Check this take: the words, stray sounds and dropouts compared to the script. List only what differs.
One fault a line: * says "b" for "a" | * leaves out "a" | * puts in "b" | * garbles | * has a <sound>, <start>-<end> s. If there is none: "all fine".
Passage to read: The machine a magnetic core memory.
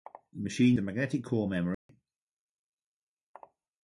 * has a dropout, 1.7-1.9 s